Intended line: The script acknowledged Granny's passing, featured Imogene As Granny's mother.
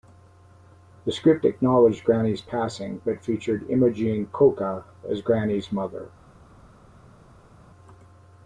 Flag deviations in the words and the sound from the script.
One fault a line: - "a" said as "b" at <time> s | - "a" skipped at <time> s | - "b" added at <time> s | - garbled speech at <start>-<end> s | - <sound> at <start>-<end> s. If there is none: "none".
- "but" added at 3.0 s
- "Coca" added at 4.3 s